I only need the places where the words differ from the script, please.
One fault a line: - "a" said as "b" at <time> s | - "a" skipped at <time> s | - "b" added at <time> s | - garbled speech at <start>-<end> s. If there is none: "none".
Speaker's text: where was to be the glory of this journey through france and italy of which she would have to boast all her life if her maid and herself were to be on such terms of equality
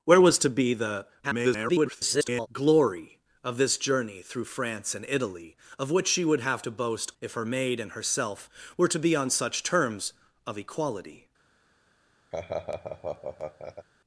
- garbled speech at 1.2-2.5 s
- "all her life" skipped at 7.1 s